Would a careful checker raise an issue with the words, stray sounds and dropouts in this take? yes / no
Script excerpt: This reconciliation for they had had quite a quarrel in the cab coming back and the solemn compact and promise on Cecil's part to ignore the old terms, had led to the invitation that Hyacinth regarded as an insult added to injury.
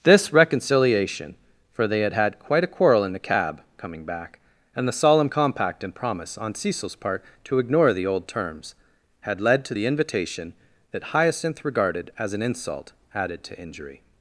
no